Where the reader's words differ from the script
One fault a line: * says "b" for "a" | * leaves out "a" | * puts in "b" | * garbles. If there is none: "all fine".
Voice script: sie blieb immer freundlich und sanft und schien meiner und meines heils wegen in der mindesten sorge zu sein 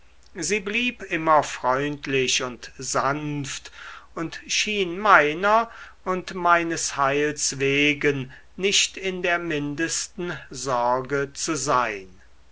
* puts in "nicht"